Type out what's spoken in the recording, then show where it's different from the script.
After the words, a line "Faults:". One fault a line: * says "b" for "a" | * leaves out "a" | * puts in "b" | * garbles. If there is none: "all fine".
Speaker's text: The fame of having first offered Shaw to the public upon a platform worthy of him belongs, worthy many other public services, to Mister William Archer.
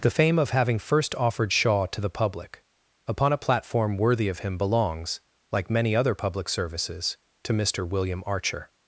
The fame of having first offered Shaw to the public upon a platform worthy of him belongs, like many other public services, to Mister William Archer.
Faults:
* says "like" for "worthy"